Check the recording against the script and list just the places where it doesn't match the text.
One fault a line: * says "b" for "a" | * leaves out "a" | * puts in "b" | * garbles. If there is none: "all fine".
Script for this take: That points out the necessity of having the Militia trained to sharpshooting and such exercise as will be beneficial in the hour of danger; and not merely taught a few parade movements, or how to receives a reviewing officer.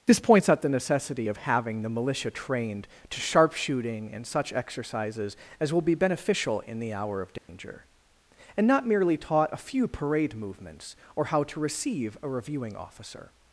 * says "This" for "That"
* says "exercises" for "exercise"
* says "receive" for "receives"